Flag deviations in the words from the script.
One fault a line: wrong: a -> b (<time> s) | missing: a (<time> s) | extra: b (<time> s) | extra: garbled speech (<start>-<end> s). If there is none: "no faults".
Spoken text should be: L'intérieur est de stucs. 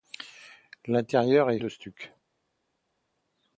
no faults